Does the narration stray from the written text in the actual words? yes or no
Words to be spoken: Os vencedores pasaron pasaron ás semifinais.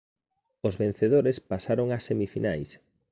yes